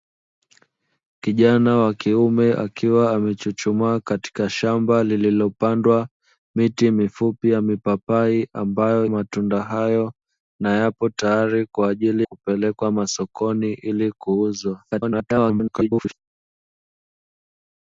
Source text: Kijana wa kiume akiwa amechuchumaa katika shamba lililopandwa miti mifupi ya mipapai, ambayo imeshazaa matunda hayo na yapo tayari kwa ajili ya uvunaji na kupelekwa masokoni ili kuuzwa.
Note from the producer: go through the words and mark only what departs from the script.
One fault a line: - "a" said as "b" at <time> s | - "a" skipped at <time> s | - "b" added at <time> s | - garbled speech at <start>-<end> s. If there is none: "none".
- "imeshazaa" skipped at 9.1 s
- "ya uvunaji na" skipped at 12.3 s
- garbled speech at 14.9-16.1 s